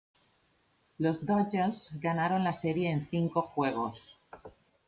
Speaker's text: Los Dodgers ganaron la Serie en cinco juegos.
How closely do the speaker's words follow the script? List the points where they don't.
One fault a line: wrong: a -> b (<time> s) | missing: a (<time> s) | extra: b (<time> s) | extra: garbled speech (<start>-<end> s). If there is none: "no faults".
no faults